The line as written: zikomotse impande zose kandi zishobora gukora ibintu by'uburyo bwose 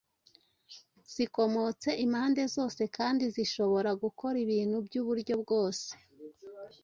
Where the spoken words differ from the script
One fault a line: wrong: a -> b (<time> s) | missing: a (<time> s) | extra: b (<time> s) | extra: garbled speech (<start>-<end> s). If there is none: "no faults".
no faults